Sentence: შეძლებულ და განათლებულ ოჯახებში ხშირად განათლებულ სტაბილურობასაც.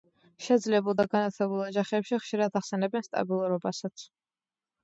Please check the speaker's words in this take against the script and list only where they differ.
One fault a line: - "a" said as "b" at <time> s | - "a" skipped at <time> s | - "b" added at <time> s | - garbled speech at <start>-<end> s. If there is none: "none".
- "განათლებულ" said as "ახსენებენ" at 2.6 s